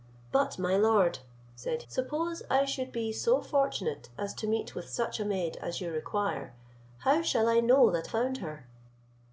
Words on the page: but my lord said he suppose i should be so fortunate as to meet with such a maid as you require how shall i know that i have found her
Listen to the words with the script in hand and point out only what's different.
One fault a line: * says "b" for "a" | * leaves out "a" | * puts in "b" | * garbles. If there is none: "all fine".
* leaves out "he"
* leaves out "i have"